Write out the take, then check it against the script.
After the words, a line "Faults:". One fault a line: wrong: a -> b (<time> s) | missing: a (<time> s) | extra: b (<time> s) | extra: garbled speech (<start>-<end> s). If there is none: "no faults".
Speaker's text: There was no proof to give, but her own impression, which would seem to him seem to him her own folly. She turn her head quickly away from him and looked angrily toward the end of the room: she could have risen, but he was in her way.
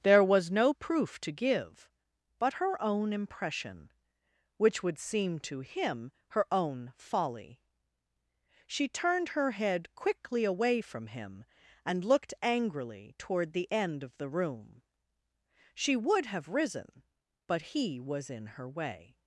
There was no proof to give, but her own impression, which would seem to him her own folly. She turned her head quickly away from him and looked angrily toward the end of the room: she would have risen, but he was in her way.
Faults:
missing: seem to him (6.1 s)
wrong: turn -> turned (8.9 s)
wrong: could -> would (16.0 s)